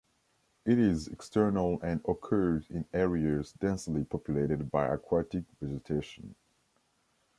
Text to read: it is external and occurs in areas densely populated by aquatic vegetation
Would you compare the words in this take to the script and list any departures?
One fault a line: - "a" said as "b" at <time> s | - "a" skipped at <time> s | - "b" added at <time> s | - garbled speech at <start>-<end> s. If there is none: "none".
none